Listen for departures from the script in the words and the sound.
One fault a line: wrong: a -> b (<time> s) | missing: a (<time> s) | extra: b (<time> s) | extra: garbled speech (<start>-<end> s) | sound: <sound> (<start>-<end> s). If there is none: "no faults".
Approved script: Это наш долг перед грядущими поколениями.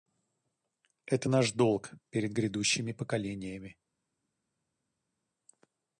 no faults